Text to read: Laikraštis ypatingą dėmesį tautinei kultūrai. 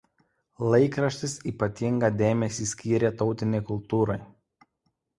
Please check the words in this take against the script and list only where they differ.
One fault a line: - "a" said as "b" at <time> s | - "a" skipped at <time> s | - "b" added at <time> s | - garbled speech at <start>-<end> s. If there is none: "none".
- "skyrė" added at 2.7 s